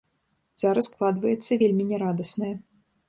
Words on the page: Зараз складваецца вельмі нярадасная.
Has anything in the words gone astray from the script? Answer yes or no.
no